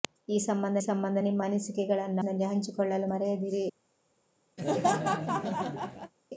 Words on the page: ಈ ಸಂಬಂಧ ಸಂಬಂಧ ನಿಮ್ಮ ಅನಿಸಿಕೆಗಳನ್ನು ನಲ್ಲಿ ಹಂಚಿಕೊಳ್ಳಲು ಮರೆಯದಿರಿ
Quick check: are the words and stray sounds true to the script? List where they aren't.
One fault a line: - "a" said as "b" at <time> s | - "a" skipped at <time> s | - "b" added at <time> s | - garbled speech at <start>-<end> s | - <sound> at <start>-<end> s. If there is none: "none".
- laugh at 4.6-6.1 s